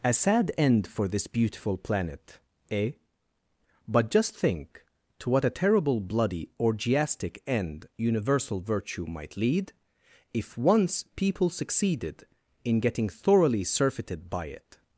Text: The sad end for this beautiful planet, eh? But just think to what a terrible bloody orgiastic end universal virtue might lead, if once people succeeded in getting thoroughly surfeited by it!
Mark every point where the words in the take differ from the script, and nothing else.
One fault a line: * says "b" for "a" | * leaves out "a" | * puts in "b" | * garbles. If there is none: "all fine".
* says "A" for "The"